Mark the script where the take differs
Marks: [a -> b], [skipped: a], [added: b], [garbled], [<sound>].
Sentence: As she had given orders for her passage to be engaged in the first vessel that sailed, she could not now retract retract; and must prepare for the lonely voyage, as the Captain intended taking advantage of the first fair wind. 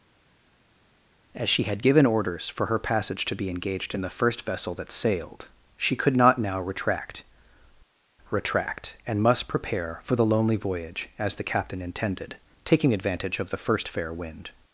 As she had given orders for her passage to be engaged in the first vessel that sailed, she could not now retract retract; and must prepare for the lonely voyage, as the Captain intended taking advantage of the first fair wind.